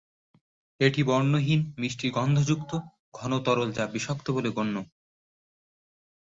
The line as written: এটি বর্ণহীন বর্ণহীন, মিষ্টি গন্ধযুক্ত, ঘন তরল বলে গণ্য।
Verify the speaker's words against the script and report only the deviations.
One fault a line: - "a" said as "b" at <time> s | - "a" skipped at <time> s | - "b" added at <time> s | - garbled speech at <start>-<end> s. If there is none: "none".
- "বর্ণহীন" skipped at 1.6 s
- "যা বিষাক্ত" added at 3.7 s